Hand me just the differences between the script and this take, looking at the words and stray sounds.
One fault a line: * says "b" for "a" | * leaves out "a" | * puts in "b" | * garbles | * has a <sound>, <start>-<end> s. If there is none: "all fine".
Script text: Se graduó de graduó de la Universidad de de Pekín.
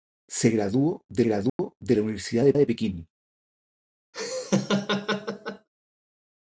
* has a dropout, 1.5-1.6 s
* has a laugh, 4.1-5.7 s